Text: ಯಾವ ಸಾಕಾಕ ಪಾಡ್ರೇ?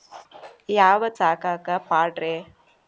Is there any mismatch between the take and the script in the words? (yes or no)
no